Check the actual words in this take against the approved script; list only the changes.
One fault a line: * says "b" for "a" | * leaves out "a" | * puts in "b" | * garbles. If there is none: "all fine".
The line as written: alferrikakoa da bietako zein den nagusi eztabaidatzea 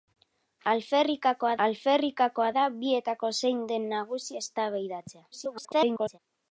* puts in "alferrikakoa"
* garbles